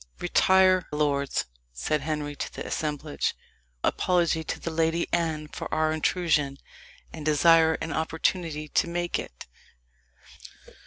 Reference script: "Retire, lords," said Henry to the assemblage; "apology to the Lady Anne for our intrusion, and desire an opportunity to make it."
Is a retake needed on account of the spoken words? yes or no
no